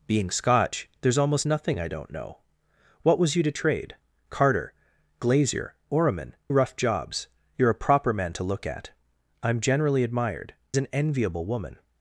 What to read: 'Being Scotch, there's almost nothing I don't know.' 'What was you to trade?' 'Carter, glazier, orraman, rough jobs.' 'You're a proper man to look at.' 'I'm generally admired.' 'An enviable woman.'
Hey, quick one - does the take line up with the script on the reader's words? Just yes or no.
yes